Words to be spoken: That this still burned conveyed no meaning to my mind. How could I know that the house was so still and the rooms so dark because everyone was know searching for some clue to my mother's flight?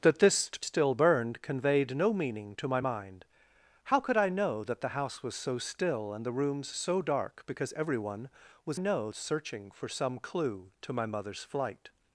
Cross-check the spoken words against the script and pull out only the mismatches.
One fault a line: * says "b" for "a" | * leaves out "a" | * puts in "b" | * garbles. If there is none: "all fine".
all fine